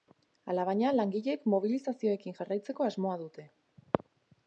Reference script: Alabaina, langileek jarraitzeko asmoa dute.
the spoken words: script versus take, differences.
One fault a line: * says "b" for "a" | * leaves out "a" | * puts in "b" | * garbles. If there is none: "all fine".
* puts in "mobilizazioekin"